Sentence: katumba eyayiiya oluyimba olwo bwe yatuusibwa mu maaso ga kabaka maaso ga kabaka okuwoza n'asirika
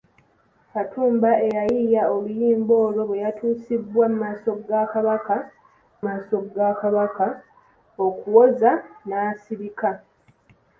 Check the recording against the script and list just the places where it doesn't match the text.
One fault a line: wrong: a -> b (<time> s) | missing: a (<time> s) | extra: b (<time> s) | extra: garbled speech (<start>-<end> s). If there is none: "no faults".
no faults